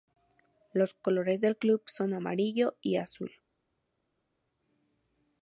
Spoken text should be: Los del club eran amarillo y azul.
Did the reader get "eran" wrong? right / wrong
wrong